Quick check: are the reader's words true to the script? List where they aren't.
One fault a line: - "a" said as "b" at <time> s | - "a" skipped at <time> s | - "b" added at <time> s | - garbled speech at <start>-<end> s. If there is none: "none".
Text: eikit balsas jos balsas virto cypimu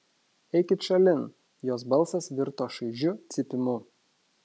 - "balsas" said as "šalin" at 0.9 s
- "šaižiu" added at 2.8 s